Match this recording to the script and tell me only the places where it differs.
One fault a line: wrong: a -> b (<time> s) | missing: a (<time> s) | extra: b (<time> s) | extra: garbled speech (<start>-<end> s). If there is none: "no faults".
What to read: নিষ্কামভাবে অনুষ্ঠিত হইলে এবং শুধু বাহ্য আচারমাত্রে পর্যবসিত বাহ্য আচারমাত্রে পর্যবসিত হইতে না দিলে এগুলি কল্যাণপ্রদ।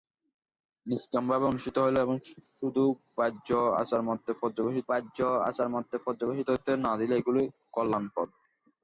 no faults